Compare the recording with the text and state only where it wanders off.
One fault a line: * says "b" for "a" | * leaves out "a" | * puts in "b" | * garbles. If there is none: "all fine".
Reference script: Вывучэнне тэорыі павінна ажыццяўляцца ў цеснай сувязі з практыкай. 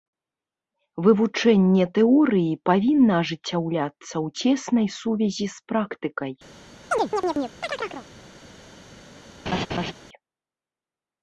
all fine